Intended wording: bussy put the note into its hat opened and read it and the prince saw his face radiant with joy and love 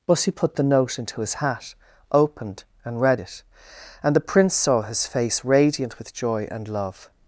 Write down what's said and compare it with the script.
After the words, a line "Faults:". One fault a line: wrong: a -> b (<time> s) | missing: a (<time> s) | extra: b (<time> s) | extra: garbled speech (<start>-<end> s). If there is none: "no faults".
bussy put the note into his hat opened and read it and the prince saw his face radiant with joy and love
Faults:
wrong: its -> his (1.2 s)